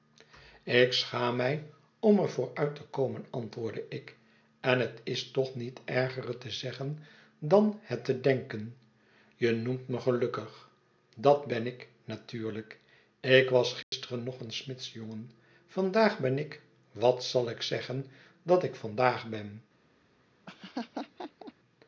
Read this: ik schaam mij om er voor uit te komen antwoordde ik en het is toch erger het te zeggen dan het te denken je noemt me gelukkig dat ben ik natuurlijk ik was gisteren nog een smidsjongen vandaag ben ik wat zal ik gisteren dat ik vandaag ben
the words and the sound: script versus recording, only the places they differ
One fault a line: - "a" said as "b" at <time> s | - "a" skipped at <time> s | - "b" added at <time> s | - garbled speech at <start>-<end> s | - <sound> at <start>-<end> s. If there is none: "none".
- "niet" added at 5.5 s
- dropout at 13.8-13.9 s
- "gisteren" said as "zeggen" at 17.6 s
- laugh at 20.5-21.5 s